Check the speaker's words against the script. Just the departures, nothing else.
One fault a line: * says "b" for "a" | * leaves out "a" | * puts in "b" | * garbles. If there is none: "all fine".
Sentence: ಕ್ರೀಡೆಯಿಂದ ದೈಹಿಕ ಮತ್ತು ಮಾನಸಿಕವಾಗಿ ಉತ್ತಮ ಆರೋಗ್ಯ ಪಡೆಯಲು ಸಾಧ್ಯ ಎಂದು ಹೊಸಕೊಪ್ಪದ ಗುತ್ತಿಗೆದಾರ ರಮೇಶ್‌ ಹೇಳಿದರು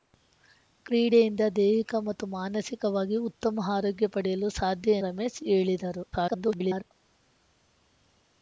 * leaves out "ಎಂದು ಹೊಸಕೊಪ್ಪದ ಗುತ್ತಿಗೆದಾರ"
* garbles